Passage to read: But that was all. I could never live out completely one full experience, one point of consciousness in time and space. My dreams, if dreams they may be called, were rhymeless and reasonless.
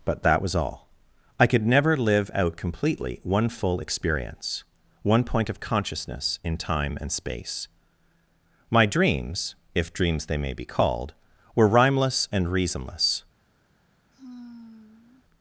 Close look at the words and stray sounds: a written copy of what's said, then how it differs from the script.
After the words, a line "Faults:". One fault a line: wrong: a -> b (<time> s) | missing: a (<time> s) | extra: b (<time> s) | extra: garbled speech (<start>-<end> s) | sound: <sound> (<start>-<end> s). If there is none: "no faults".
But that was all. I could never live out completely one full experience, one point of consciousness in time and space. My dreams, if dreams they may be called, were rhymeless and reasonless.
Faults:
sound: sigh (14.1-15.3 s)